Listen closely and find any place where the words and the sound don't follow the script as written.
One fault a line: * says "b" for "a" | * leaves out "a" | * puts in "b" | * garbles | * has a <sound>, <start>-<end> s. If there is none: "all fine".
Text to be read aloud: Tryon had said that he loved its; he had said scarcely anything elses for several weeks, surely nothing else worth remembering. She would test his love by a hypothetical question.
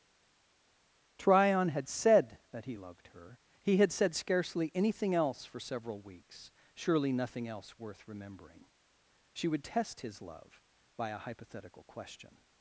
* says "her" for "its"
* says "else" for "elses"